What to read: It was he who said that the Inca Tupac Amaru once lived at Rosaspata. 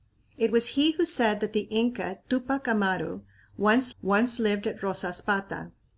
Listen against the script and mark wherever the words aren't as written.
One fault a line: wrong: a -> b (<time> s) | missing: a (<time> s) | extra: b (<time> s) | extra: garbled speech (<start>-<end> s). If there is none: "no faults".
extra: once (4.0 s)